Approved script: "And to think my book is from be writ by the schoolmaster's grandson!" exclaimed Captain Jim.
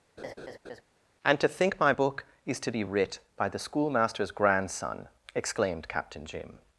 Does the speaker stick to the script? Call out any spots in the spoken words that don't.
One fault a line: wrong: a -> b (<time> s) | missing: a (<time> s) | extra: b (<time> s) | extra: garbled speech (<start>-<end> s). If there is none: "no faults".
wrong: from -> to (2.6 s)